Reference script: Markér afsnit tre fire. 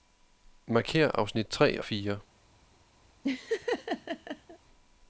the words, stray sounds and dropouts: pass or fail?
fail